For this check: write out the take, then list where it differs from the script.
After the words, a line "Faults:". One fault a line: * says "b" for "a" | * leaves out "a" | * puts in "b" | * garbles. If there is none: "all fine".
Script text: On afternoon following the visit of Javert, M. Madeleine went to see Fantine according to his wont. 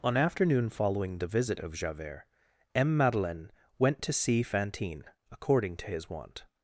On afternoon following the visit of Javert, M. Madeleine went to see Fantine according to his wont.
Faults:
all fine